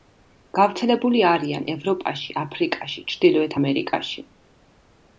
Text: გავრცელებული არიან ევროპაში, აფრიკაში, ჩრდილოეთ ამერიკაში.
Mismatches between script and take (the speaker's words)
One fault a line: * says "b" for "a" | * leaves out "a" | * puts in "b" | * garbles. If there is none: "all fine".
all fine